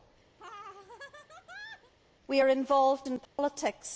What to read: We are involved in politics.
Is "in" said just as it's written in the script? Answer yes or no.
yes